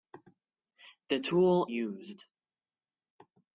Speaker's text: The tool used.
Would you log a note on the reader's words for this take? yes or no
no